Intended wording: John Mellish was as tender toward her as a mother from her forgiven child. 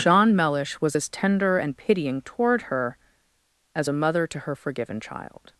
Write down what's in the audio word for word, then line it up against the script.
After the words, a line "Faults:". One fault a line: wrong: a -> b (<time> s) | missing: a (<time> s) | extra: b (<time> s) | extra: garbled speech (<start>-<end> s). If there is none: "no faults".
John Mellish was as tender and pitying toward her as a mother to her forgiven child.
Faults:
extra: and pitying (1.6 s)
wrong: from -> to (4.3 s)